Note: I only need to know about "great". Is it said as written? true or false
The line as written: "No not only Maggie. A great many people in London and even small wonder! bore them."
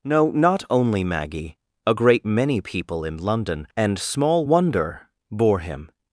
true